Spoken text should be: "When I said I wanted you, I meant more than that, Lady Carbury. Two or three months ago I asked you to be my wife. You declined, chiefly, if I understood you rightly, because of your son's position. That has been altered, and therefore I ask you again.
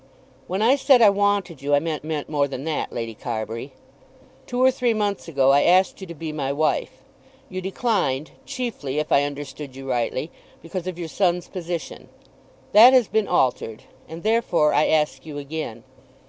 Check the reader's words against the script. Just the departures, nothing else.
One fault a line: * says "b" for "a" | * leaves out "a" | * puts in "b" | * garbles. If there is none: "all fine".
* puts in "meant"